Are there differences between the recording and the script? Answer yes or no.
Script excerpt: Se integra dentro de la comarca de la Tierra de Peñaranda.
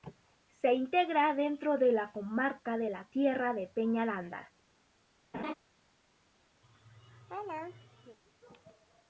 no